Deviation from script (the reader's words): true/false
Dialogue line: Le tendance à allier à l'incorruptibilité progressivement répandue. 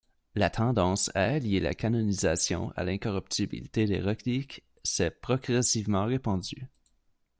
true